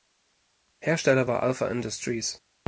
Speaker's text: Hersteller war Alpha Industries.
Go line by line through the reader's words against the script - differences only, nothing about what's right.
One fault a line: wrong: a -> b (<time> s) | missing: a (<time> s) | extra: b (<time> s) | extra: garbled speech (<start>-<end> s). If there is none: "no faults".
no faults